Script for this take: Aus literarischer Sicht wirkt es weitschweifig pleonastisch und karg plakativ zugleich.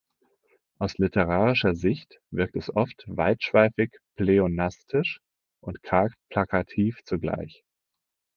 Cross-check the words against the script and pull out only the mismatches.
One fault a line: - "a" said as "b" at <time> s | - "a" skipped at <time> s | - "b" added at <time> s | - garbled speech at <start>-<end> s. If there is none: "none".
- "oft" added at 2.7 s